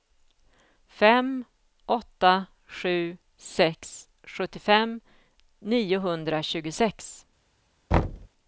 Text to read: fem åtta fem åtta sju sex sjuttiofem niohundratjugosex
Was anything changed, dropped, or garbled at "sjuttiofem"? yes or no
no